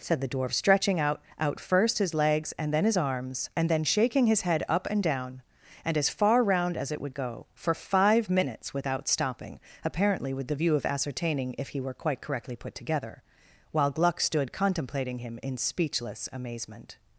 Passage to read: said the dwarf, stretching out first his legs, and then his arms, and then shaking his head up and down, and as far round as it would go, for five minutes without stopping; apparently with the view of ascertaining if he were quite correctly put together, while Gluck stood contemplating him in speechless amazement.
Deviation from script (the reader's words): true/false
true